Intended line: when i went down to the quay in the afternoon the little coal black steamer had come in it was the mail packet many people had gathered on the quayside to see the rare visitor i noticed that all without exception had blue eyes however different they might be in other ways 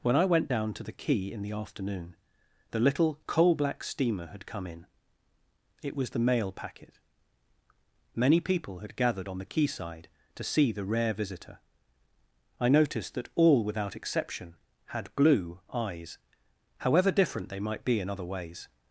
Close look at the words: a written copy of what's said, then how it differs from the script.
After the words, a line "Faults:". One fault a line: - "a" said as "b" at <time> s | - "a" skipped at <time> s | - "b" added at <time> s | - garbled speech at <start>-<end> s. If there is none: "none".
when i went down to the quay in the afternoon the little coal black steamer had come in it was the mail packet many people had gathered on the quayside to see the rare visitor i noticed that all without exception had blue eyes however different they might be in other ways
Faults:
none